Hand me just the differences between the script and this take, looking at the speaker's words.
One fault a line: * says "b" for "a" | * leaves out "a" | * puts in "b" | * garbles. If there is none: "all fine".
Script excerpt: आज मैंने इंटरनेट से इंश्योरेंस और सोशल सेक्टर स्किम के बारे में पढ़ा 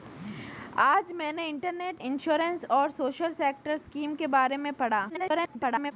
* leaves out "से"
* garbles